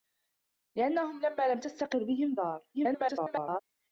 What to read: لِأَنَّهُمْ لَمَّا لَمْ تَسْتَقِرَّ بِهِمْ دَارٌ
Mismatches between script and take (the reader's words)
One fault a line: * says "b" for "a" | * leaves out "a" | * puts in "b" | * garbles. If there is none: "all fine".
* garbles